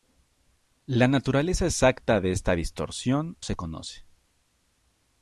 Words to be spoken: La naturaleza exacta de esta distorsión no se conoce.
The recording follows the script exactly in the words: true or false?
false